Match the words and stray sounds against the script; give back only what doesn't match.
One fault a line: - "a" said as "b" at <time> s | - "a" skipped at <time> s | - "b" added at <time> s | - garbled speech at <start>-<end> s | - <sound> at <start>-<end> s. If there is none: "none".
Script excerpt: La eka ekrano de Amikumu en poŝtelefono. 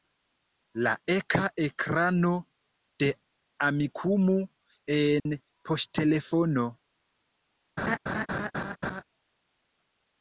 - dropout at 5.2-5.3 s
- laugh at 7.8-9.0 s